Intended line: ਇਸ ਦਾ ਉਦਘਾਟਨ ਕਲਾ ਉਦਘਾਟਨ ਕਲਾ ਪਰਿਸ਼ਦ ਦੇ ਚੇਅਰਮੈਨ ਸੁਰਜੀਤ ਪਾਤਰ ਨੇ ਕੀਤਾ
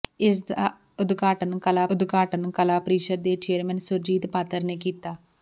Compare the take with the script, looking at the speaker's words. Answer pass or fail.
pass